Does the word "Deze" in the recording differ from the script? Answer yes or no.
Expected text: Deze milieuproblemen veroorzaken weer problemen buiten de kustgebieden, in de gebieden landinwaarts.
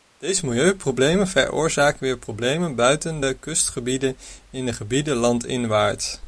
no